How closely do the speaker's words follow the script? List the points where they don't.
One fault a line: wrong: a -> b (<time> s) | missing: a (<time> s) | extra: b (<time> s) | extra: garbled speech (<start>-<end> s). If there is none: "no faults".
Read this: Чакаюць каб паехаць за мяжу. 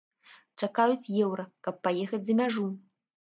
extra: еўра (1.2 s)